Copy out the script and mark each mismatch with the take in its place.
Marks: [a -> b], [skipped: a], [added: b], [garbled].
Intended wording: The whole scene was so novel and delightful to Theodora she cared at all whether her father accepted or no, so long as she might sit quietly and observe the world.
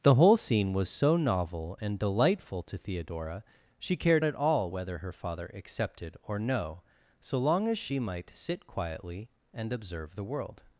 The whole scene was so novel and delightful to Theodora she cared at all whether her father accepted or no, so long as she might sit quietly and observe the world.